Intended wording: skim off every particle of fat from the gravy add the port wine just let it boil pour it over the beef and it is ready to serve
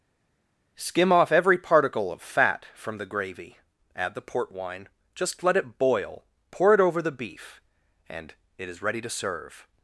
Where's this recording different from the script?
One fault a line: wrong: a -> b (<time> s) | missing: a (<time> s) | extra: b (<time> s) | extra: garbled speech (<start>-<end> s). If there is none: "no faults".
no faults